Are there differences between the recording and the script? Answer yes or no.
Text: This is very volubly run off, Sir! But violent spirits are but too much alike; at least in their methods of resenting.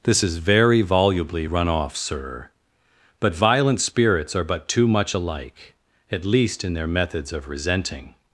no